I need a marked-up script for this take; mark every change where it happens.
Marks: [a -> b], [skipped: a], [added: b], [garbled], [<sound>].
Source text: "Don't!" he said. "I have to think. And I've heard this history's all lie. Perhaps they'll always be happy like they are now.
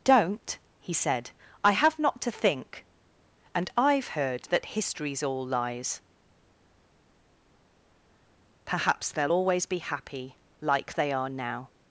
"Don't!" he said. "I have [added: not] to think. And I've heard [this -> that] history's all [lie. -> lies] Perhaps they'll always be happy like they are now.